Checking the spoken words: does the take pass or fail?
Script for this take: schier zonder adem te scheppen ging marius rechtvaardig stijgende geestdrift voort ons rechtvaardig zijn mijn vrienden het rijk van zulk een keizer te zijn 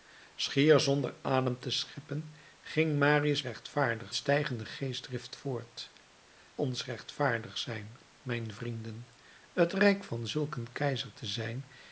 pass